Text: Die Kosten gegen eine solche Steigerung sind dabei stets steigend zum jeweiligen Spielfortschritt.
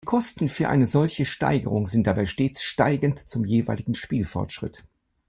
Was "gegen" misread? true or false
true